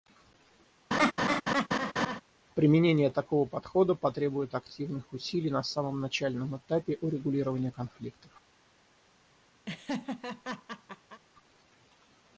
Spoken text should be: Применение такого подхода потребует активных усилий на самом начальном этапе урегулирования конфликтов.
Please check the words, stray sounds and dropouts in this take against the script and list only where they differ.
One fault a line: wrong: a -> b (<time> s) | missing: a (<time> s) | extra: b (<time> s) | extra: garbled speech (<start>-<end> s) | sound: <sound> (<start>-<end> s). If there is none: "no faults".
sound: laugh (0.9-2.2 s)
sound: laugh (9.7-11.2 s)